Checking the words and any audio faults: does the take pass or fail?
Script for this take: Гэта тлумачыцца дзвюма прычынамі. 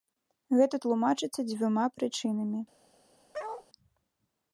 fail